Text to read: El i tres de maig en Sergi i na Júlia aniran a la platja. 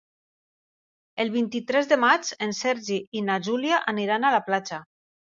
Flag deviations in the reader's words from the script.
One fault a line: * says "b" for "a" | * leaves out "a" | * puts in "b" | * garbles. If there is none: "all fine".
* puts in "vint"